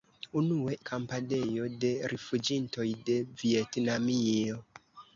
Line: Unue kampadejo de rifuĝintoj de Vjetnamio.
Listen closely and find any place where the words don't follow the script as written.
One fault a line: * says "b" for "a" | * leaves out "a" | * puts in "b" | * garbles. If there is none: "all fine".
all fine